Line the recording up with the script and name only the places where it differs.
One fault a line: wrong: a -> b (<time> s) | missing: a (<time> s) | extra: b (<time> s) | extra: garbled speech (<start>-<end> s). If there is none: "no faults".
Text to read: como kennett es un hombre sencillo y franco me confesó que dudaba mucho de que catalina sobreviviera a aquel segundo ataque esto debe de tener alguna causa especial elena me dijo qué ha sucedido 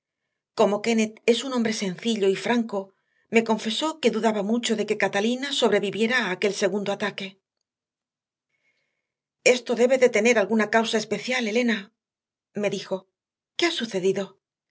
no faults